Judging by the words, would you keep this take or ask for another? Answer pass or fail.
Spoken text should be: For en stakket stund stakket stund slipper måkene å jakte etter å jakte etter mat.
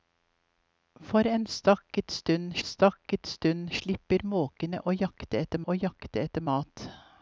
pass